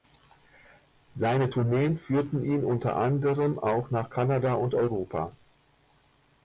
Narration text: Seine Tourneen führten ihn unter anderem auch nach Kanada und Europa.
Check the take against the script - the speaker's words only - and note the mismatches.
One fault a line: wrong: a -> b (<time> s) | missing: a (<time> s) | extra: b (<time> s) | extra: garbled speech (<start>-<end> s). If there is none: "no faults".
no faults